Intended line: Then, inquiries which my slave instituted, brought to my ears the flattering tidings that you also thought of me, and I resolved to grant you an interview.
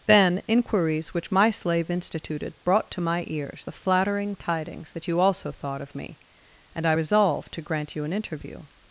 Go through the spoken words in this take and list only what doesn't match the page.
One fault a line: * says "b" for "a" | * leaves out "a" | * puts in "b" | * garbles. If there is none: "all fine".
all fine